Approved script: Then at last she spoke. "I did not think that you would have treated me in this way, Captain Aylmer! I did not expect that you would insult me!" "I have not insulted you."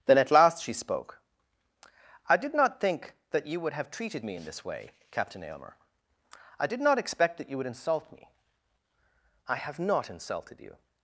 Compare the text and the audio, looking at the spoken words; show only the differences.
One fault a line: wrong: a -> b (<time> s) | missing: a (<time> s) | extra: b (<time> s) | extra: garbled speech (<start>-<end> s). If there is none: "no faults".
no faults